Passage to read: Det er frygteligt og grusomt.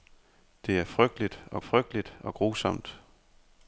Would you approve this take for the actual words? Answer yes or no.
no